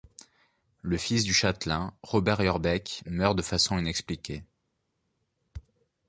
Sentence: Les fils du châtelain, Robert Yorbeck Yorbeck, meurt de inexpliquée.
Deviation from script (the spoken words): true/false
true